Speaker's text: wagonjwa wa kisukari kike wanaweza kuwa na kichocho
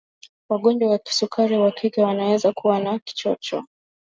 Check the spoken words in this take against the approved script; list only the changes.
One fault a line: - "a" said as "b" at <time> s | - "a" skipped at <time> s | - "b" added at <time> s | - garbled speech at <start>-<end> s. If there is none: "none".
- "wa" added at 1.6 s